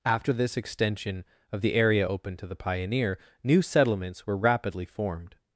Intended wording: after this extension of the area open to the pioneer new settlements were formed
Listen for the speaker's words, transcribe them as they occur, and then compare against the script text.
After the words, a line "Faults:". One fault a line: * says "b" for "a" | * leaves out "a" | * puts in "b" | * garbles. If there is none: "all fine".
after this extension of the area open to the pioneer new settlements were rapidly formed
Faults:
* puts in "rapidly"